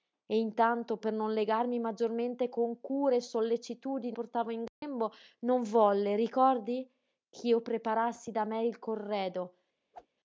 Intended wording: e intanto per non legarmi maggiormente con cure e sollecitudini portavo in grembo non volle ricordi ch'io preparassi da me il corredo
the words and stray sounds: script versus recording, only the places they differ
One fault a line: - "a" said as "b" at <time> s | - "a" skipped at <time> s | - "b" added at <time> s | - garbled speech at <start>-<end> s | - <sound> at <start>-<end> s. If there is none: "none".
- dropout at 4.7-4.8 s
- whoosh at 9.9-10.1 s